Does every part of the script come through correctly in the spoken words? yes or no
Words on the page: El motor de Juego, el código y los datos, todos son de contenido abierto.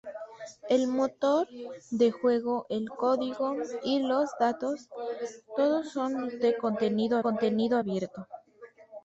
no